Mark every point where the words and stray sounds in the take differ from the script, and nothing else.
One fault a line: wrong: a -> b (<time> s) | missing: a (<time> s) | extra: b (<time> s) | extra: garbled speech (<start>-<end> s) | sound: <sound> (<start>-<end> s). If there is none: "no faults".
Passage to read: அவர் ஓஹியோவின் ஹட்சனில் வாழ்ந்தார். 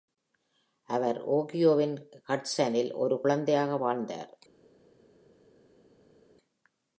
extra: ஒரு குழந்தையாக (2.9 s)